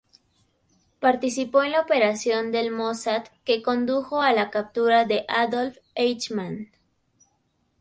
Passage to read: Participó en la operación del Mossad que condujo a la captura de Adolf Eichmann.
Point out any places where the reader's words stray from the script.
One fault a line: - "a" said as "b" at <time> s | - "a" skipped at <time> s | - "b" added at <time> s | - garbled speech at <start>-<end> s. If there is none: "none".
none